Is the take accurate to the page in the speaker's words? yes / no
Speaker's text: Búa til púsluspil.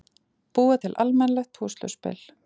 no